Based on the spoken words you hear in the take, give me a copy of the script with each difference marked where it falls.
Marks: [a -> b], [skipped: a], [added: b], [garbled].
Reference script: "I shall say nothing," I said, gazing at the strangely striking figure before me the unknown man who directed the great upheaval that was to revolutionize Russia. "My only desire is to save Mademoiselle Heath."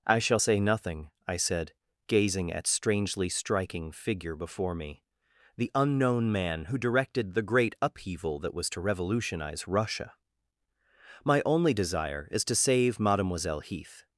"I shall say nothing," I said, gazing at [skipped: the] strangely striking figure before me the unknown man who directed the great upheaval that was to revolutionize Russia. "My only desire is to save Mademoiselle Heath."